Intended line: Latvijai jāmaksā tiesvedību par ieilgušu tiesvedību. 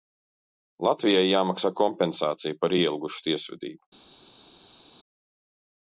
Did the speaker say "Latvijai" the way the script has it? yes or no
yes